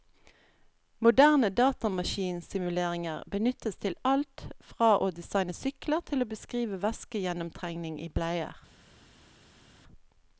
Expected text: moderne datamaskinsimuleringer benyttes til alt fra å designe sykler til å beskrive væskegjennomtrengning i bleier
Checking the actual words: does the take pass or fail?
pass